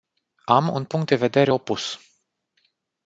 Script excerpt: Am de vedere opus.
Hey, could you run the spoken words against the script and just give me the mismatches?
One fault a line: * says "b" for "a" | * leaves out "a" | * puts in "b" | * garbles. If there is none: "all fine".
* puts in "un punct"